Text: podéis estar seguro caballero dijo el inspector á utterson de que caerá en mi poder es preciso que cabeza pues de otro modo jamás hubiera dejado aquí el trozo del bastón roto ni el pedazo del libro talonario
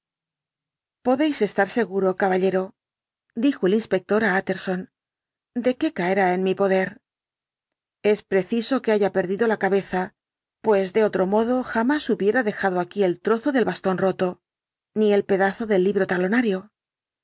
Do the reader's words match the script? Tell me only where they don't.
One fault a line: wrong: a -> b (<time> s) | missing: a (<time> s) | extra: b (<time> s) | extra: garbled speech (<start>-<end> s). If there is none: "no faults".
extra: haya perdido la (8.9 s)